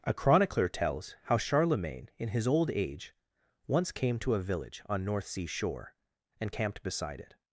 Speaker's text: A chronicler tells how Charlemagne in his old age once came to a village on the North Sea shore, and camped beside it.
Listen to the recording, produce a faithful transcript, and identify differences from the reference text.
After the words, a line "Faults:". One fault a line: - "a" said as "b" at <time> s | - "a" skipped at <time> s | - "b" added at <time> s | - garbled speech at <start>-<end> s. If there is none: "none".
A chronicler tells how Charlemagne in his old age once came to a village on North Sea shore, and camped beside it.
Faults:
- "the" skipped at 5.0 s